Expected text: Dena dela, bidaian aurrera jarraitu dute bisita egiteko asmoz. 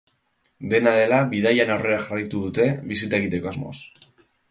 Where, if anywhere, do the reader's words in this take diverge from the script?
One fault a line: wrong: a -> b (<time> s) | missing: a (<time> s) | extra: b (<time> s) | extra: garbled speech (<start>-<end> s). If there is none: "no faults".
no faults